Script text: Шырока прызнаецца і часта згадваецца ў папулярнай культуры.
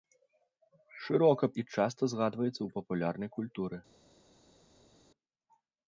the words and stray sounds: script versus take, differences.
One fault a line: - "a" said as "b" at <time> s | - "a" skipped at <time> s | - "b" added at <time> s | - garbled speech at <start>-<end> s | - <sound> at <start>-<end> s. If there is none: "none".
- "прызнаецца" skipped at 1.5 s